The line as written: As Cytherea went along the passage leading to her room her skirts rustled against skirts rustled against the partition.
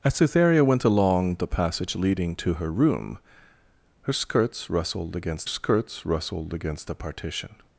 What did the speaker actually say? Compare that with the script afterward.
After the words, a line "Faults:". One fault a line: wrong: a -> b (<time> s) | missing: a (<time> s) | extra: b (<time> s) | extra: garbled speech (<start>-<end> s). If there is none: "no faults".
As Cytherea went along the passage leading to her room her skirts rustled against skirts rustled against the partition.
Faults:
no faults